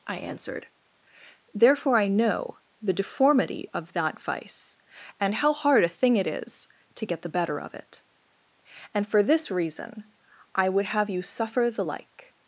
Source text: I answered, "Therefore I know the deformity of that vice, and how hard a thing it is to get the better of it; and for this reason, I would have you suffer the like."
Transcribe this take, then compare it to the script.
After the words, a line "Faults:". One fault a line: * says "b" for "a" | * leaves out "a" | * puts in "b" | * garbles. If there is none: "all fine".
I answered, "Therefore I know the deformity of that vice, and how hard a thing it is to get the better of it; and for this reason, I would have you suffer the like."
Faults:
all fine